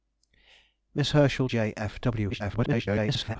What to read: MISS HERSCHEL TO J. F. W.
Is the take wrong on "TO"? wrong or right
wrong